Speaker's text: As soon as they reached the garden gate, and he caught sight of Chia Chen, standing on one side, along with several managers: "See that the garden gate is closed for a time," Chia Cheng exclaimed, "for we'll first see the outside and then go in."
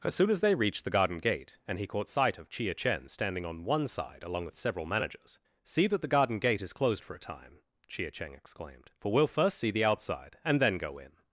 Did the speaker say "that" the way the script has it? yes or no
yes